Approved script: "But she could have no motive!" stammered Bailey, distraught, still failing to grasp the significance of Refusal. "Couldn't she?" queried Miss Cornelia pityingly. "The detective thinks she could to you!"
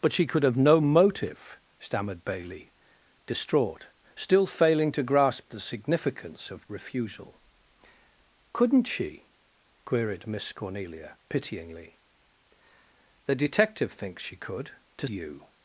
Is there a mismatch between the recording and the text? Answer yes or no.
no